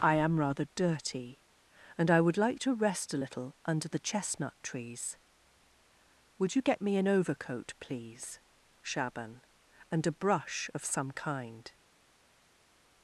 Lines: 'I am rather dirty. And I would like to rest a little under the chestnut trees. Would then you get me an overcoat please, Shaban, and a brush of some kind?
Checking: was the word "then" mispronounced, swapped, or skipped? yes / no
yes